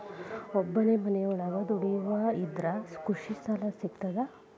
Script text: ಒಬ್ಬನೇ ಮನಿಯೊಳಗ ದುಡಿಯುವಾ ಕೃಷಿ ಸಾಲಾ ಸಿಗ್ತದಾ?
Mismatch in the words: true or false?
true